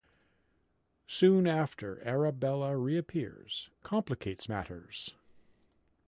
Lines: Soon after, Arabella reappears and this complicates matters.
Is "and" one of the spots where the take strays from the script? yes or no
yes